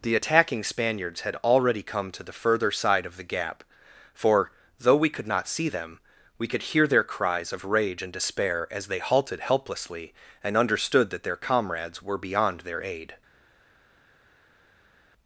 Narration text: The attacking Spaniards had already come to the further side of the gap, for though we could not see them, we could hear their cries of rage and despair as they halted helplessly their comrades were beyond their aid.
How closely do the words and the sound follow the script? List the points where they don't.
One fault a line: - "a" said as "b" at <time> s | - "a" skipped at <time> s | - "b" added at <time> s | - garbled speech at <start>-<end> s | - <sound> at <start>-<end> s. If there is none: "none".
- "and understood that" added at 10.4 s